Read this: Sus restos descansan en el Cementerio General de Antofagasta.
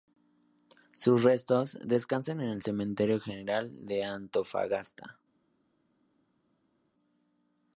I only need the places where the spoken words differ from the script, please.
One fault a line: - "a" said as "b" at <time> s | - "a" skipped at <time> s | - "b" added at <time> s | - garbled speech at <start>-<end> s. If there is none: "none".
none